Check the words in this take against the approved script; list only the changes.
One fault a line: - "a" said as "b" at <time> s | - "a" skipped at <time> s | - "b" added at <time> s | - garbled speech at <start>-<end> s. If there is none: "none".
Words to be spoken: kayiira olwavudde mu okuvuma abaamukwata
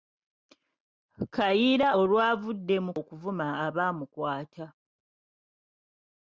none